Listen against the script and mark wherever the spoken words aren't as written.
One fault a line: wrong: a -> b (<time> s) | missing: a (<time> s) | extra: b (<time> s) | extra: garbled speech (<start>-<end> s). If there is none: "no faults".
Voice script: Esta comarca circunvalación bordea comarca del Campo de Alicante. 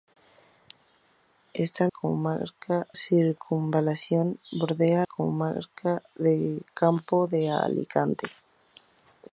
no faults